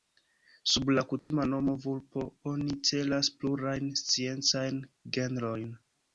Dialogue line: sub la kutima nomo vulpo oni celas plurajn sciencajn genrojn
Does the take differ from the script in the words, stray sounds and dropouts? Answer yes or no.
yes